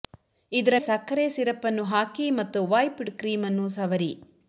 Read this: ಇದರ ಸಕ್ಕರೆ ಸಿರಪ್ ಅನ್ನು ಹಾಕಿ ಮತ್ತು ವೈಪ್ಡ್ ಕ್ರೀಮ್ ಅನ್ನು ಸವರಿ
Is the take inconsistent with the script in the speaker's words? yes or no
no